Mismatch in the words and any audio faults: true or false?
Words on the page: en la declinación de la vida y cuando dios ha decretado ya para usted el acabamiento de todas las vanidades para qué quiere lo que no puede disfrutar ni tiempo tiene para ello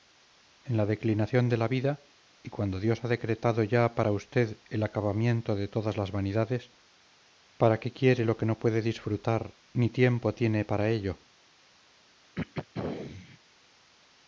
true